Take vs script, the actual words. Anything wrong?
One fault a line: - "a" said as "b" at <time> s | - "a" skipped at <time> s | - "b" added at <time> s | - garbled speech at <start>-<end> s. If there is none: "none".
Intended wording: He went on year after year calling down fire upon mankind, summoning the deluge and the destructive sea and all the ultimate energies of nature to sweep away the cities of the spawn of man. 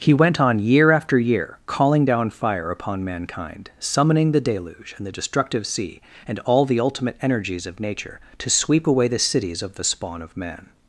none